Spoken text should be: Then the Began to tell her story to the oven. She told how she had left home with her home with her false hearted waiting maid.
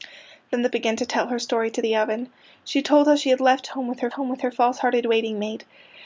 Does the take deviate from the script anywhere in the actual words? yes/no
no